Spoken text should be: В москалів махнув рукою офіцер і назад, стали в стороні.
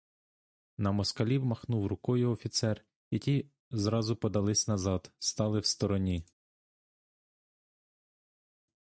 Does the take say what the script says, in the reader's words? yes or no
no